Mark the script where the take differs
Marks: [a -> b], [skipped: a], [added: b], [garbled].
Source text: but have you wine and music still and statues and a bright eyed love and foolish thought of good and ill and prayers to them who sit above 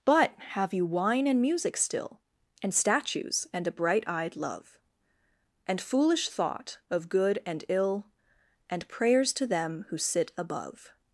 but have you wine and music still and statues and a bright eyed love and foolish thought of good and ill and prayers to them who sit above